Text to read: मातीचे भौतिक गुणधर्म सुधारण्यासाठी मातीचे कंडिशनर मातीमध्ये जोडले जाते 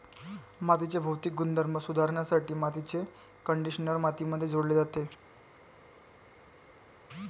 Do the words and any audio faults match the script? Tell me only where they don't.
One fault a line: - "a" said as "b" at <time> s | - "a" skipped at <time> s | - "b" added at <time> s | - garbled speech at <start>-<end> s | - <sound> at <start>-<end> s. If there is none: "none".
none